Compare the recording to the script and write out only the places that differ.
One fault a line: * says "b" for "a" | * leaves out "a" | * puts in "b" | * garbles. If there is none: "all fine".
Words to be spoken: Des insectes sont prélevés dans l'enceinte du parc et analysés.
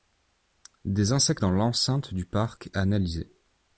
* leaves out "sont prélevés"
* leaves out "et"